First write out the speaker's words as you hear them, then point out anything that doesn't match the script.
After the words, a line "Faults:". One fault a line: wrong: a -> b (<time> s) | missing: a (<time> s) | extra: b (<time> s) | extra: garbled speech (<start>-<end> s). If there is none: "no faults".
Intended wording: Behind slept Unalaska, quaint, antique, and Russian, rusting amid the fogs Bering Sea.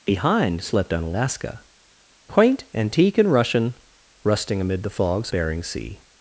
Behind slept Unalaska, quaint, antique, and Russian, rusting amid the fogs Bering Sea.
Faults:
no faults